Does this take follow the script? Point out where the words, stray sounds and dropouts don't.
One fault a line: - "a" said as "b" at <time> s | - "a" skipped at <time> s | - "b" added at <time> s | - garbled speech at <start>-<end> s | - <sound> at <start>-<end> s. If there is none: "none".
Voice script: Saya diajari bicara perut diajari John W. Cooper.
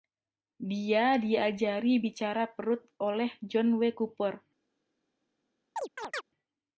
- "Saya" said as "Dia" at 0.6 s
- "diajari" said as "oleh" at 3.0 s
- chirp at 5.8-6.2 s